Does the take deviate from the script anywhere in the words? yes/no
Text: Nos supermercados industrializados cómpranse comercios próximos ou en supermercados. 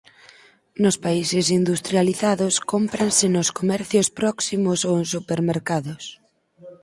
yes